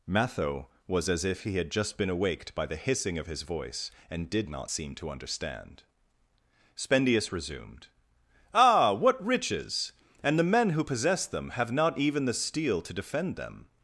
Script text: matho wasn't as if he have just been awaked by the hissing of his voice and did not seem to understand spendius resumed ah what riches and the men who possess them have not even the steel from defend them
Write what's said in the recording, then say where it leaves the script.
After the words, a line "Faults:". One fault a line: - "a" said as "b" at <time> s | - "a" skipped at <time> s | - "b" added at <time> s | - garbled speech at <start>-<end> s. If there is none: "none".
matho was as if he had just been awaked by the hissing of his voice and did not seem to understand spendius resumed ah what riches and the men who possess them have not even the steel to defend them
Faults:
- "wasn't" said as "was" at 0.9 s
- "have" said as "had" at 1.6 s
- "from" said as "to" at 12.8 s